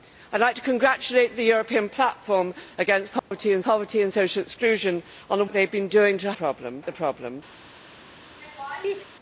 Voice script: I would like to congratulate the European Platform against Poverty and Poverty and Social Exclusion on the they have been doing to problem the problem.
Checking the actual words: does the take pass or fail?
pass